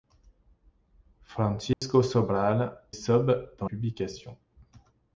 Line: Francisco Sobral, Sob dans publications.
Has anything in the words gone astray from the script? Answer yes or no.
no